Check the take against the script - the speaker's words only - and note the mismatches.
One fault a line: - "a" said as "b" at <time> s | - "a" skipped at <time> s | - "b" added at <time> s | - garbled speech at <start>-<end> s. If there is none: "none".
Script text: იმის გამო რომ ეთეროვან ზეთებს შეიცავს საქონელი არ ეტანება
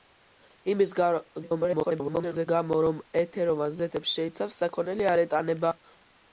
- garbled speech at 1.4-2.5 s